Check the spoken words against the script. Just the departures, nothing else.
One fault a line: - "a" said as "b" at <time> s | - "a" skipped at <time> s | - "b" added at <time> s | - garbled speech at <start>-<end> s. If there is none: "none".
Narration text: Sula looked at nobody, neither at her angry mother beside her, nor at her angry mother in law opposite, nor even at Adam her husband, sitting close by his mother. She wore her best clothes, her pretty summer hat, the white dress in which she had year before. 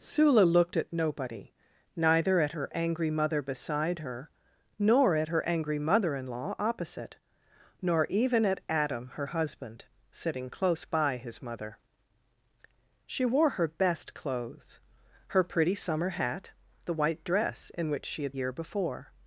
none